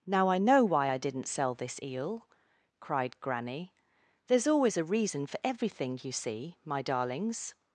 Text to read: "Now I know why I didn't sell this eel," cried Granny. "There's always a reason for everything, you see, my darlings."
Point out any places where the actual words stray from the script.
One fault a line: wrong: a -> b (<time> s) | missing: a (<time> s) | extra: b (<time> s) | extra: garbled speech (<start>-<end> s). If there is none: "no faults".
no faults